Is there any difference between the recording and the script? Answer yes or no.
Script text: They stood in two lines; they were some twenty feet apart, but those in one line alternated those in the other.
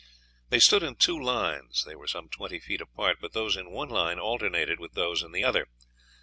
yes